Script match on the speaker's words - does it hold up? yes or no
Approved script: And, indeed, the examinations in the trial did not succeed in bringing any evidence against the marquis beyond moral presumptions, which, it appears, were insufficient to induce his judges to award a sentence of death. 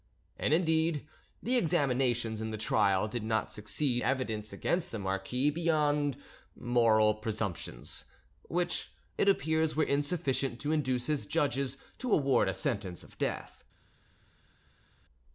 no